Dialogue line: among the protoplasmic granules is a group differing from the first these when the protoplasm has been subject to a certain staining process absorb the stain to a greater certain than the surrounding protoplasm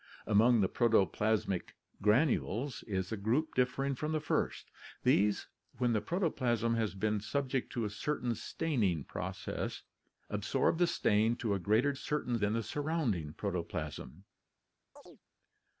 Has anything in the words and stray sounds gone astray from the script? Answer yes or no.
yes